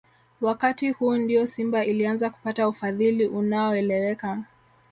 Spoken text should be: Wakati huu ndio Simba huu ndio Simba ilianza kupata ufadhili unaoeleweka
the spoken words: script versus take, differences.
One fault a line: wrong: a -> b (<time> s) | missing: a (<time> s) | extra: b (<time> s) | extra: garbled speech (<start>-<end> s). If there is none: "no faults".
missing: huu ndio Simba (1.8 s)